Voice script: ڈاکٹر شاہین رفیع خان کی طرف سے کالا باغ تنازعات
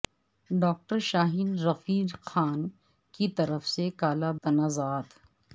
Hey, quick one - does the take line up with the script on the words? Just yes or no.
no